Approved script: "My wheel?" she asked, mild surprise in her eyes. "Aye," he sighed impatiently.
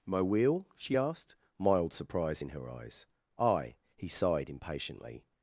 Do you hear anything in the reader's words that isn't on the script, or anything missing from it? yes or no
no